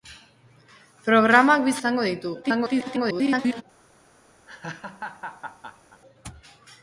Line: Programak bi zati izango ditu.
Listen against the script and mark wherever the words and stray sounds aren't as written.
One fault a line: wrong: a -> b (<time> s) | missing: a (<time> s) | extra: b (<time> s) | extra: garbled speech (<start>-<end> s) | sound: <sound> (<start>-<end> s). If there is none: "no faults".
missing: zati (1.8 s)
extra: garbled speech (2.4-3.6 s)
sound: laugh (4.5-6.0 s)